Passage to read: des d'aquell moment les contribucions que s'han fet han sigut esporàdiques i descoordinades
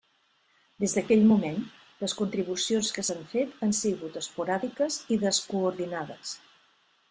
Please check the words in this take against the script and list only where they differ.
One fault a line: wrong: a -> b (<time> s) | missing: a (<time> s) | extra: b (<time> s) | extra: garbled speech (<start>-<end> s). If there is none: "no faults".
no faults